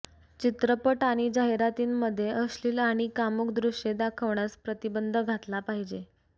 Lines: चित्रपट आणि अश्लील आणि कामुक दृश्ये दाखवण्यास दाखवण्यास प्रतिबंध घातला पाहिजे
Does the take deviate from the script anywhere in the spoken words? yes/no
yes